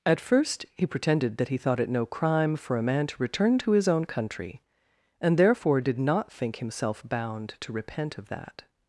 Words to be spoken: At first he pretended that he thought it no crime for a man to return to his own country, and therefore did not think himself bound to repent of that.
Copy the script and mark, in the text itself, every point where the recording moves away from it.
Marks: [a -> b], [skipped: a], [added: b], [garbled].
At first he pretended that he thought it no crime for a man to return to his own country, and therefore did not think himself bound to repent of that.